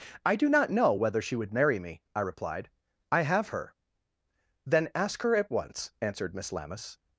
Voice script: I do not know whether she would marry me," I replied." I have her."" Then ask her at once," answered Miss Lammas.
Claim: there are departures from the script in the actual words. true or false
false